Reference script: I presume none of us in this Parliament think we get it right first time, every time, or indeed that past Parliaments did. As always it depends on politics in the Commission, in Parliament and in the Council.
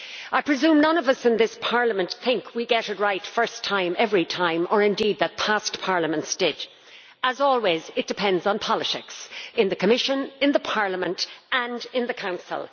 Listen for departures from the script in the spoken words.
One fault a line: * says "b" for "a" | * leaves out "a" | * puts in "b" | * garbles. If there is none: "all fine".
all fine